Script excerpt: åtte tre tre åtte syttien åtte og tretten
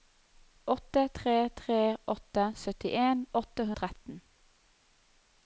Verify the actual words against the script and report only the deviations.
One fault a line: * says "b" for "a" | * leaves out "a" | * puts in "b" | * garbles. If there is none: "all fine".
all fine